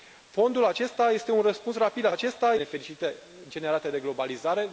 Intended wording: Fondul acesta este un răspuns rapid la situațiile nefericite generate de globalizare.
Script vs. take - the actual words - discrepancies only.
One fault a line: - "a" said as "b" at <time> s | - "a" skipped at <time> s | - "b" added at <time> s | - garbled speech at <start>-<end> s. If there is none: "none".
- "situațiile" said as "acesta" at 2.1 s